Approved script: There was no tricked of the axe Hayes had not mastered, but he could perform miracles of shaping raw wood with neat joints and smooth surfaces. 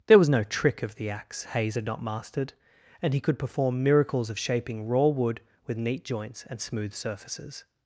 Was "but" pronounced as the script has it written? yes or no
no